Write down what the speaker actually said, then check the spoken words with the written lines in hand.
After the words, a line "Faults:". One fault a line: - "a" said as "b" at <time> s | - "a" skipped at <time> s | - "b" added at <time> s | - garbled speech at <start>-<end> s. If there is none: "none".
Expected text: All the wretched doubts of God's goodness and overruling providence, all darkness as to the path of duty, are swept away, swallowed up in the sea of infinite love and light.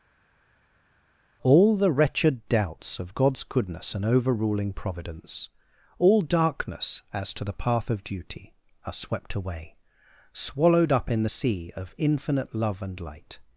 All the wretched doubts of God's goodness and overruling providence, all darkness as to the path of duty, are swept away, swallowed up in the sea of infinite love and light.
Faults:
none